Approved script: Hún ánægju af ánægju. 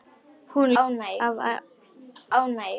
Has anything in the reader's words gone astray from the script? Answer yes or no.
no